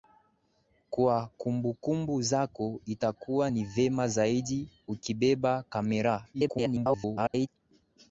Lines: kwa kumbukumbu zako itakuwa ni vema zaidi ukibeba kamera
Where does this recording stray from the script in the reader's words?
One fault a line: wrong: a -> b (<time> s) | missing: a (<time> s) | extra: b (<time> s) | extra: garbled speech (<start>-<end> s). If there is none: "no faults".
extra: garbled speech (6.3-7.5 s)